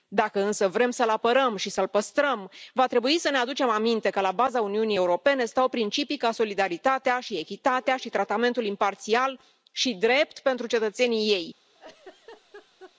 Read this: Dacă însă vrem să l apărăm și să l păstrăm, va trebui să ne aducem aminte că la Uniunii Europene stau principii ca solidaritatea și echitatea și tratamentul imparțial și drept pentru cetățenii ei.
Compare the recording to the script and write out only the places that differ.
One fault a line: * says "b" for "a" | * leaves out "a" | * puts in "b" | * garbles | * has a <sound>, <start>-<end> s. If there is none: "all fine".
* puts in "baza"
* has a laugh, 11.7-13.0 s